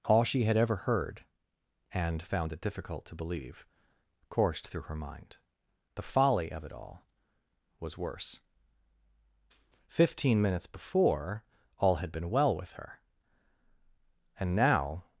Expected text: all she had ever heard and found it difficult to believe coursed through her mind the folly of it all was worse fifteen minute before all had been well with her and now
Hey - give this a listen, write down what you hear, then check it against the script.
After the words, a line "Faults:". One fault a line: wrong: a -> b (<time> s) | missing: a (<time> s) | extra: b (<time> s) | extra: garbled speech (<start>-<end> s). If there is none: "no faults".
all she had ever heard and found it difficult to believe coursed through her mind the folly of it all was worse fifteen minutes before all had been well with her and now
Faults:
wrong: minute -> minutes (10.4 s)